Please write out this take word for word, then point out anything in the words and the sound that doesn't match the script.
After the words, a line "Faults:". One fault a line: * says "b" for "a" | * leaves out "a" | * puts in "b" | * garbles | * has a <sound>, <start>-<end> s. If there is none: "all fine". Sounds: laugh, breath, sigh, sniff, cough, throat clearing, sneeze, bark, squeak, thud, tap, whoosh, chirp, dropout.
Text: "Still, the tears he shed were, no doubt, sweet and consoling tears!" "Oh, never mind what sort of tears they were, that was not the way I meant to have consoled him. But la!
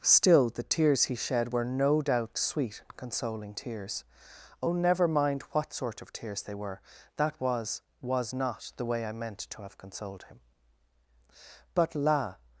"Still, the tears he shed were, no doubt, sweet and consoling tears!" "Oh, never mind what sort of tears they were, that was was not the way I meant to have consoled him. But la!
Faults:
* puts in "was"